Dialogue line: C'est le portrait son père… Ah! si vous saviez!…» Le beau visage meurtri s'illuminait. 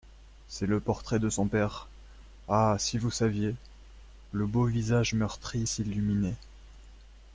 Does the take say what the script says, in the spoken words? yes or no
no